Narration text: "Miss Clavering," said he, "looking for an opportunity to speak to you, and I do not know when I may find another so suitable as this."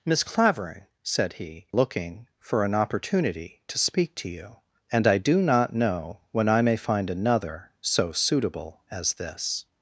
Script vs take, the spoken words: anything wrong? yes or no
no